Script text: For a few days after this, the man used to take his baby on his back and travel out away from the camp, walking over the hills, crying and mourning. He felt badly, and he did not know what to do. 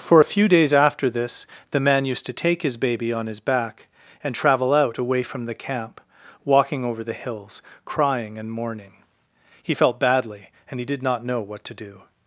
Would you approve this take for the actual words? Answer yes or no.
yes